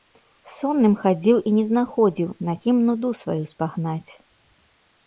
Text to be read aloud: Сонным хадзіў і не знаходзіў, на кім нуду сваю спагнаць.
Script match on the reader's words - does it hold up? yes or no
yes